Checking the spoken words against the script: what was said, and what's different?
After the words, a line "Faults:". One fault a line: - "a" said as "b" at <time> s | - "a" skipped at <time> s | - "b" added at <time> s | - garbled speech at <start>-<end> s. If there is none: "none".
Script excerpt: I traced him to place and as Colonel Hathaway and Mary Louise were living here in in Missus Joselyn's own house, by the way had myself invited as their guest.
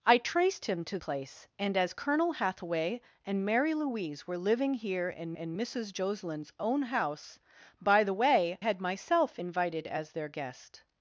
I traced him to place and as Colonel Hathaway and Mary Louise were living here in in Missus Joselyn's own house, by the way had myself invited as their guest.
Faults:
none